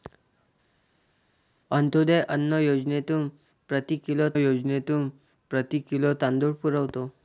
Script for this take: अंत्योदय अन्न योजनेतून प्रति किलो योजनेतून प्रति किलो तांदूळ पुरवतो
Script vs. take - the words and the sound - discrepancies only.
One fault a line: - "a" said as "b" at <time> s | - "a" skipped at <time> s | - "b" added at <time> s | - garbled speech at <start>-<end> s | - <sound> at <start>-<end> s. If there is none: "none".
none